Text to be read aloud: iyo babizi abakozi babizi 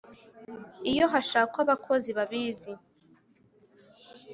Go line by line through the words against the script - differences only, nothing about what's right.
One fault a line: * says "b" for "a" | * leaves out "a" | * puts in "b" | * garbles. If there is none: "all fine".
* says "hashakwa" for "babizi"